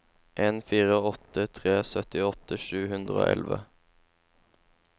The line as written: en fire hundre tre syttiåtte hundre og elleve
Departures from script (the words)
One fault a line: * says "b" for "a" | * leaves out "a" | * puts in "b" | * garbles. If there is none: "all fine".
* says "åtte" for "hundre"
* puts in "sju"